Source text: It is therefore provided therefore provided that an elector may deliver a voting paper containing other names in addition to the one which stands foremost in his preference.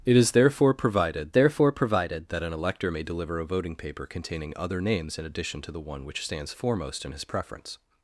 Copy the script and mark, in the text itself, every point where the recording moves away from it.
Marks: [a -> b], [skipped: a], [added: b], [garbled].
It is therefore provided therefore provided that an elector may deliver a voting paper containing other names in addition to the one which stands foremost in his preference.